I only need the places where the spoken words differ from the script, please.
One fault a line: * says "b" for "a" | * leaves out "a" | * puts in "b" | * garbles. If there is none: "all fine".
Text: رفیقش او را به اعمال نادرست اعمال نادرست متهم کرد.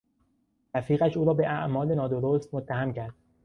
* leaves out "اعمال نادرست"